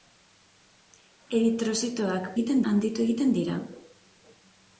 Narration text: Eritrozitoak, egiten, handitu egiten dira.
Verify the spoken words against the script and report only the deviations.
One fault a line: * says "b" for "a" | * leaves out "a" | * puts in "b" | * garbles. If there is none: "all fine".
all fine